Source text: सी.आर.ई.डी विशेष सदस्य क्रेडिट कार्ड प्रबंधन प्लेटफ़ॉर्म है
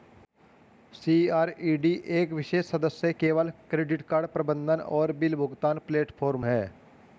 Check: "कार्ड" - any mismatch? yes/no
no